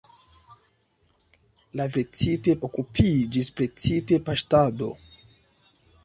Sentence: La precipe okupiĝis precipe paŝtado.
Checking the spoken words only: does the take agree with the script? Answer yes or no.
yes